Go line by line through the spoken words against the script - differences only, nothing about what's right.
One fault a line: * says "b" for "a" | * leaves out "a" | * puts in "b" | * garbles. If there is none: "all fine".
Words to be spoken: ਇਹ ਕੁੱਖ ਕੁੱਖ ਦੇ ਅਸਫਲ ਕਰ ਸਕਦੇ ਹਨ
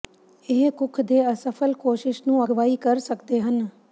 * leaves out "ਕੁੱਖ"
* puts in "ਕੋਸ਼ਿਸ਼ ਨੂੰ ਅਗਵਾਈ"